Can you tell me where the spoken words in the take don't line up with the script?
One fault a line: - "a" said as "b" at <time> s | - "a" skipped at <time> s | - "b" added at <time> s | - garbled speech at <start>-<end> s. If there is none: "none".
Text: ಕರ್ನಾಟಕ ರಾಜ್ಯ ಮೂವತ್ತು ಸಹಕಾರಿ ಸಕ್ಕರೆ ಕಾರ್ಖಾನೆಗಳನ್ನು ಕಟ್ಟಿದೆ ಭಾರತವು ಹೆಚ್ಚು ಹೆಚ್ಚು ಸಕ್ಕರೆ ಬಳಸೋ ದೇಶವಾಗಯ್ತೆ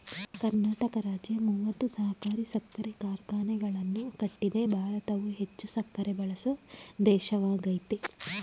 - "ಹೆಚ್ಚು" skipped at 5.7 s